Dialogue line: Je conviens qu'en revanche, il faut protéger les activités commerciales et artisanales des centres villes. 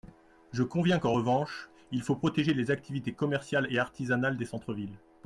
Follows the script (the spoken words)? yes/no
yes